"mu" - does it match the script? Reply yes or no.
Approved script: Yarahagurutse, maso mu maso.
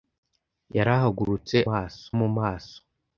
yes